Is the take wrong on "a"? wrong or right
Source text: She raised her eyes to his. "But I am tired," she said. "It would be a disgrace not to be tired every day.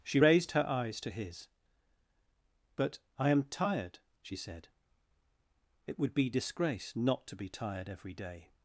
wrong